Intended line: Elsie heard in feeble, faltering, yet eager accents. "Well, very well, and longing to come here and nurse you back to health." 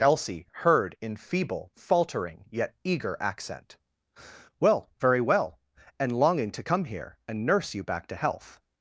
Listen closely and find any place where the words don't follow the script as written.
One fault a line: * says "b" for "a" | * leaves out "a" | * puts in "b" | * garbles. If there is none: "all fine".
* says "accent" for "accents"